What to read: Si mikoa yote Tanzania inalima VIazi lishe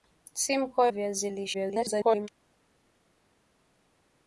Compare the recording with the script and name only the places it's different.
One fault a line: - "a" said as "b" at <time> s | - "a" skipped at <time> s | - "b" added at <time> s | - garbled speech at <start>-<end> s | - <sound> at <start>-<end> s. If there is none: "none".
- "yote Tanzania inalima" skipped at 0.9 s
- garbled speech at 1.5-2.3 s